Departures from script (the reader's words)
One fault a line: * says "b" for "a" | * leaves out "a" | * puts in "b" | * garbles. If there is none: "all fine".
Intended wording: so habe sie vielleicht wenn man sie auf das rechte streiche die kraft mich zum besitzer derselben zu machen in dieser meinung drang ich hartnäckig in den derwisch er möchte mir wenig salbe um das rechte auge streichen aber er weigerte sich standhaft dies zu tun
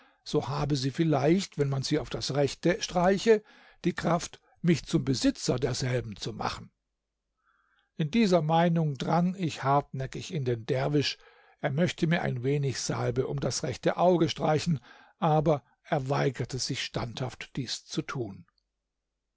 * puts in "ein"